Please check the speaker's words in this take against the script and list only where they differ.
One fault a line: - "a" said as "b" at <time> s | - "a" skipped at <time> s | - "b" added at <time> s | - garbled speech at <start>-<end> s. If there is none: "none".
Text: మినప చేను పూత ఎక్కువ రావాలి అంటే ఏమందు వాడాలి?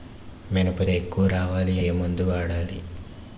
- "చేను పూత" skipped at 0.8 s
- "అంటే" skipped at 1.8 s